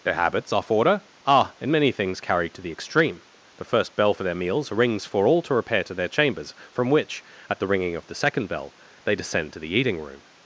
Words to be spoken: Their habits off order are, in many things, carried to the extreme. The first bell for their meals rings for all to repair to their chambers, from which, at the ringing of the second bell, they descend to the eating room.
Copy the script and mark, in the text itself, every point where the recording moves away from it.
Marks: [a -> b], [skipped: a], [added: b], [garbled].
Their habits off order are, in many things, carried to the extreme. The first bell for their meals rings for all to repair to their chambers, from which, at the ringing of the second bell, they descend to the eating room.